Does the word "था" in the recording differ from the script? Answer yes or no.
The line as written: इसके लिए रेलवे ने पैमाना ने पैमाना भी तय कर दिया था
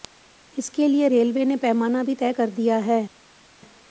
yes